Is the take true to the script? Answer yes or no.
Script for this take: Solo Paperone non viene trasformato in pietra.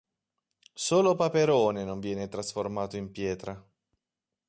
yes